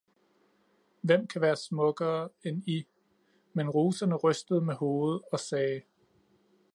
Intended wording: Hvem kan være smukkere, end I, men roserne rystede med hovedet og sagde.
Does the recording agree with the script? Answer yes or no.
yes